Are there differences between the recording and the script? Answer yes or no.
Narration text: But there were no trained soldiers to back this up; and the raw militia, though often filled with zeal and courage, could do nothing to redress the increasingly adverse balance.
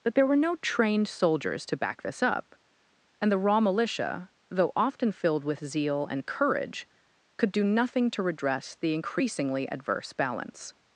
no